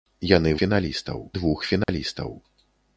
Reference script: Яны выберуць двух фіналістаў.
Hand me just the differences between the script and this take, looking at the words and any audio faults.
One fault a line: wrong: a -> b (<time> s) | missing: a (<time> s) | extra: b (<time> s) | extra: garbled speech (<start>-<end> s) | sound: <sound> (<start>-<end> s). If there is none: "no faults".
wrong: выберуць -> фіналістаў (0.6 s)
sound: dropout (1.8-1.9 s)